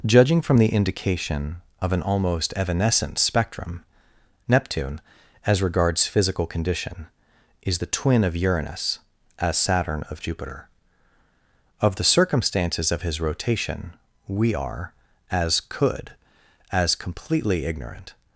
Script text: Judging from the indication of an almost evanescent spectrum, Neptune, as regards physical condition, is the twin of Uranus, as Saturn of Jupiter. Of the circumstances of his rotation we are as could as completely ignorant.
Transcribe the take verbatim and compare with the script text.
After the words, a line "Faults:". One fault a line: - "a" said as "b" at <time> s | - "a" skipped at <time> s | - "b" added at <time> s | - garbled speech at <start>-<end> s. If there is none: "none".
Judging from the indication of an almost evanescent spectrum, Neptune, as regards physical condition, is the twin of Uranus, as Saturn of Jupiter. Of the circumstances of his rotation we are as could as completely ignorant.
Faults:
none